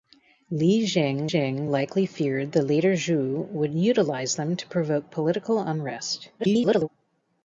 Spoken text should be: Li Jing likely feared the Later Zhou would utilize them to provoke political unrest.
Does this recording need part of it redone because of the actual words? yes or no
yes